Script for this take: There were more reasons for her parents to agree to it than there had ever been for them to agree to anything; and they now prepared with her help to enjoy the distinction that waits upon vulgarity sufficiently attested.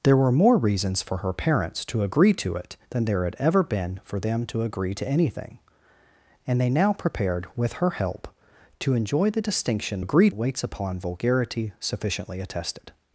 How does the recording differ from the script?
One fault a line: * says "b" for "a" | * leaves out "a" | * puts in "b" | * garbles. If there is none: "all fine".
* says "agree" for "that"